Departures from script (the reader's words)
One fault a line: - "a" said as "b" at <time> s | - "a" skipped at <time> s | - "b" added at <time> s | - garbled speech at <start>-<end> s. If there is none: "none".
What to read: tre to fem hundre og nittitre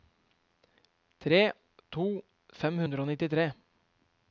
none